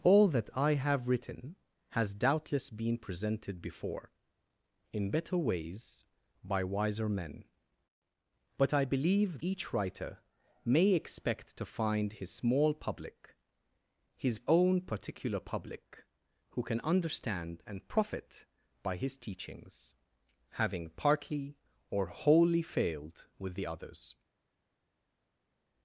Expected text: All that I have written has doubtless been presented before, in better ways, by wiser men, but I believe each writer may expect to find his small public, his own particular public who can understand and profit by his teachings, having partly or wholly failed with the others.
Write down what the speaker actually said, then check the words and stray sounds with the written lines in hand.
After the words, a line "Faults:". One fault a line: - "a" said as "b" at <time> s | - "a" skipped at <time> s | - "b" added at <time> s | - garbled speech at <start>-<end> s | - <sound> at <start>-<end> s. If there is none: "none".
All that I have written has doubtless been presented before, in better ways, by wiser men, but I believe each writer may expect to find his small public, his own particular public who can understand and profit by his teachings, having partly or wholly failed with the others.
Faults:
none